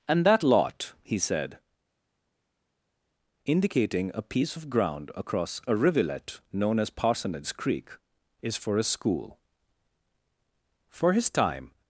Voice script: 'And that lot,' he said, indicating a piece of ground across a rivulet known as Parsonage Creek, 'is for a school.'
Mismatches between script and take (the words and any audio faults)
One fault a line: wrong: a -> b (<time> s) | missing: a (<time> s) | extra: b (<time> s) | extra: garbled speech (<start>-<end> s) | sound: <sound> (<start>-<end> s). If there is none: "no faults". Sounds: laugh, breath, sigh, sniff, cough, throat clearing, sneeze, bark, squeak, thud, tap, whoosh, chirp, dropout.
extra: For his time (10.9 s)